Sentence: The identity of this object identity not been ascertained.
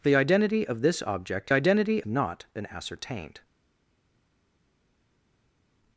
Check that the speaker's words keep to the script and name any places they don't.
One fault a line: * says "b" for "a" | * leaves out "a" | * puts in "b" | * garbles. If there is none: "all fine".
all fine